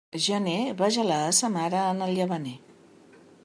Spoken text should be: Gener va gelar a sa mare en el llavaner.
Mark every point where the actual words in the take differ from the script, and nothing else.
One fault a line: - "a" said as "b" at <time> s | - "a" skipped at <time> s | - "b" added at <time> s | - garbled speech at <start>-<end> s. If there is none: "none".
none